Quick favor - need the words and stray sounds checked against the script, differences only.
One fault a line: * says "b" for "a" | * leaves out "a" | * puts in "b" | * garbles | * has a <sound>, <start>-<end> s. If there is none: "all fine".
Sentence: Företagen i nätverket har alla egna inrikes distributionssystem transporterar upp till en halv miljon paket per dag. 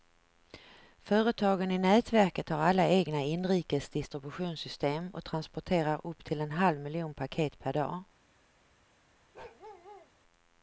* puts in "och"
* has a bark, 9.3-10.1 s